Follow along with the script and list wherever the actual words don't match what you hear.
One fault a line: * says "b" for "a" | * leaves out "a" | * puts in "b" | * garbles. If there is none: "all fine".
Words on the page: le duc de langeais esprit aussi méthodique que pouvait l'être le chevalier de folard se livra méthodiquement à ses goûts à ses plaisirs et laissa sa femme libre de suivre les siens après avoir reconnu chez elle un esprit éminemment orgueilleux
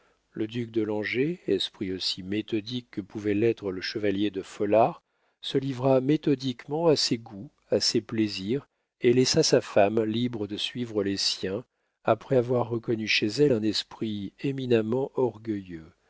all fine